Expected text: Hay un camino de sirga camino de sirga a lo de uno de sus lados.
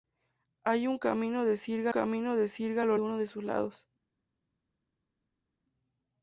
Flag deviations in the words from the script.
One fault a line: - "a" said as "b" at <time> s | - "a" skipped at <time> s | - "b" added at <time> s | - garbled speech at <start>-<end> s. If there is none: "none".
none